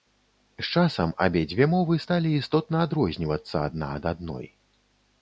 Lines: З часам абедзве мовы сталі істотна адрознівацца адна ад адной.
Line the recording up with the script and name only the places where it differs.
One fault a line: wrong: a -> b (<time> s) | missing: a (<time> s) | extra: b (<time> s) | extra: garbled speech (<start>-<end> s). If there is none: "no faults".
no faults